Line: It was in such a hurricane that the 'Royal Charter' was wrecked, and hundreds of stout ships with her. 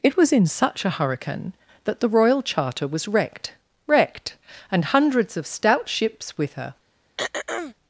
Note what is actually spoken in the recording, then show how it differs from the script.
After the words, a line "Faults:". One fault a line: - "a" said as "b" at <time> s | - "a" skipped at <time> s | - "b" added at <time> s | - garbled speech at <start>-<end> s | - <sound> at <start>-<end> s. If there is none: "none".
It was in such a hurricane that the 'Royal Charter' was wrecked wrecked, and hundreds of stout ships with her.
Faults:
- "wrecked" added at 3.9 s
- throat clearing at 7.2-7.7 s